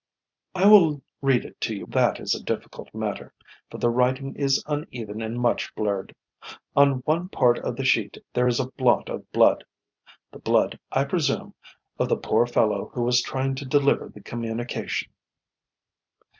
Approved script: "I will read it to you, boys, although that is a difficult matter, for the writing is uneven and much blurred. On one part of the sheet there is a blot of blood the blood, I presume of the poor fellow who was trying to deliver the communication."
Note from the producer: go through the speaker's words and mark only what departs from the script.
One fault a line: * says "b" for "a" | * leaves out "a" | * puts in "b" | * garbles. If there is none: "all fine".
* leaves out "boys although"